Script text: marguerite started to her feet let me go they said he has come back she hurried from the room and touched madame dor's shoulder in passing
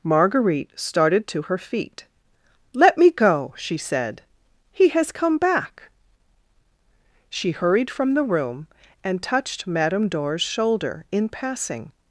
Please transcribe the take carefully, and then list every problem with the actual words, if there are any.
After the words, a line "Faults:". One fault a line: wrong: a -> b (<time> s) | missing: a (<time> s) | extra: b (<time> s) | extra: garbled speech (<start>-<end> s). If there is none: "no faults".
marguerite started to her feet let me go she said he has come back she hurried from the room and touched madame dor's shoulder in passing
Faults:
wrong: they -> she (3.6 s)